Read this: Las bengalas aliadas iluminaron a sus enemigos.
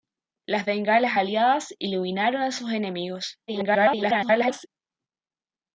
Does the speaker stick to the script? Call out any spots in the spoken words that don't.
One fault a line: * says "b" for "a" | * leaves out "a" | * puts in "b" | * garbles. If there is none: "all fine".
* garbles